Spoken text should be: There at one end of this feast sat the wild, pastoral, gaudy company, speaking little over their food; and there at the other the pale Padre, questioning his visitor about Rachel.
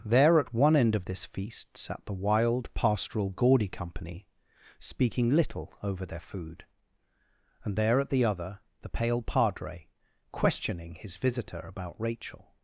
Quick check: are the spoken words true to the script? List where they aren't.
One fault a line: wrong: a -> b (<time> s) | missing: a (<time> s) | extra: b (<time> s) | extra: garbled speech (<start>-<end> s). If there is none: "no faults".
no faults